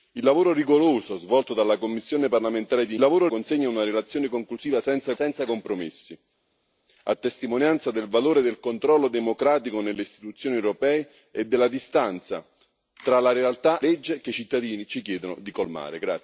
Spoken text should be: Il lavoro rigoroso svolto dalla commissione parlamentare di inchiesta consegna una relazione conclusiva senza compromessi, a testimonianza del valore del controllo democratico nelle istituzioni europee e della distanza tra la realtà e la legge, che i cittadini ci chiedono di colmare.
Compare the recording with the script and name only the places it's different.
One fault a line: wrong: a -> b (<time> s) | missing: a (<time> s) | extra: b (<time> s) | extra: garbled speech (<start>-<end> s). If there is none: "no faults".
wrong: inchiesta -> lavoro (3.0 s)
extra: senza (5.1 s)
missing: e la (13.8 s)